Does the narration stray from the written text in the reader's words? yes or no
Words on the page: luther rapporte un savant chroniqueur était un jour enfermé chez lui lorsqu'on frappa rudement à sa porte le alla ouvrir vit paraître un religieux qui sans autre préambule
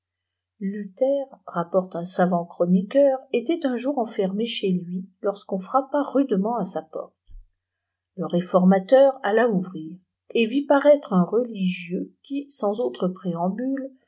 yes